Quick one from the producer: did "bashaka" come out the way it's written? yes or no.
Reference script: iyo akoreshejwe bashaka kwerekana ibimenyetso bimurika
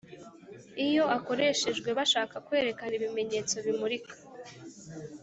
yes